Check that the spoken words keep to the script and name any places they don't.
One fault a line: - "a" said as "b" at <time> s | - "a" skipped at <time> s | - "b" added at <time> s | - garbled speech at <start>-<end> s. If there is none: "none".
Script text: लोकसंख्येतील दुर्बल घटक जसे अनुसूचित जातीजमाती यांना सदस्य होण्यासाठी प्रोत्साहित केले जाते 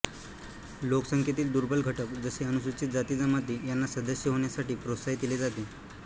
none